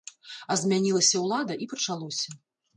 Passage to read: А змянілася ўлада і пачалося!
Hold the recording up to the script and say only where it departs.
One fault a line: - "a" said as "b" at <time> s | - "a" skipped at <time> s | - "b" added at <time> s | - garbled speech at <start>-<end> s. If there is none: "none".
none